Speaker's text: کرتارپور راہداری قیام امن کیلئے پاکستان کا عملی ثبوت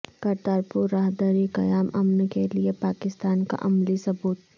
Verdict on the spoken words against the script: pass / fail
pass